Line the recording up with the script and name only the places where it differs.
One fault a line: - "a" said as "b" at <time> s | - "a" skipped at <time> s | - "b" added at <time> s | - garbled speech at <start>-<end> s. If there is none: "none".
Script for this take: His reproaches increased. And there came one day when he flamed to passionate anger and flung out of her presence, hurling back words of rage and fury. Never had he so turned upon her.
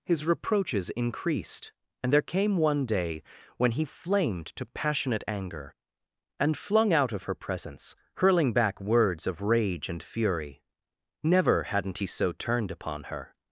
- "had" said as "hadn't" at 11.6 s